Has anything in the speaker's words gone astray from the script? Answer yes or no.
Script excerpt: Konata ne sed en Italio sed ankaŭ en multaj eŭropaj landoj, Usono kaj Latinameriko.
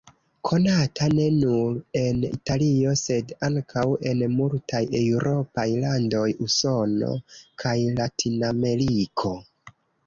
yes